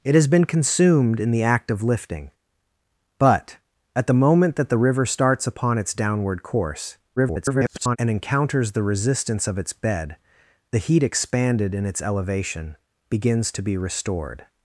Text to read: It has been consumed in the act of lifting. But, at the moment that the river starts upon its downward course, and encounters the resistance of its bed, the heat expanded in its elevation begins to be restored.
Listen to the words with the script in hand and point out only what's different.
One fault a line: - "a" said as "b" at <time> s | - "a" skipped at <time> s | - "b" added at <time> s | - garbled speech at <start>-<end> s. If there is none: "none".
- garbled speech at 7.2-8.0 s